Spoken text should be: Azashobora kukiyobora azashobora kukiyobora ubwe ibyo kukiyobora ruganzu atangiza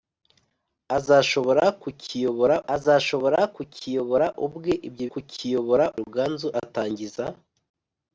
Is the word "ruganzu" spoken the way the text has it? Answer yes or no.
yes